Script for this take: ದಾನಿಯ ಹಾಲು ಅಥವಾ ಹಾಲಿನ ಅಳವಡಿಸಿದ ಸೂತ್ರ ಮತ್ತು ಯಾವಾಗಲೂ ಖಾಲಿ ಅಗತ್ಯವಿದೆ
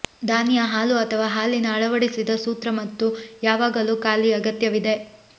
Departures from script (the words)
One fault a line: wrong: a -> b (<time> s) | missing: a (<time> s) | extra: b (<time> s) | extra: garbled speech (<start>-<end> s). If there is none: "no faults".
no faults